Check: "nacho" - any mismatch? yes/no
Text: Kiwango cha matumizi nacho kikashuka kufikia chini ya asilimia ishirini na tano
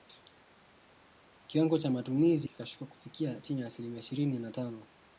yes